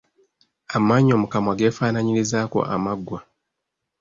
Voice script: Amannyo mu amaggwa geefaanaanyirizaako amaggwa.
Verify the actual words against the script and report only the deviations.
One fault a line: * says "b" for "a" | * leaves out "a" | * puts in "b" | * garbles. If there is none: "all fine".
* says "kamwa" for "amaggwa"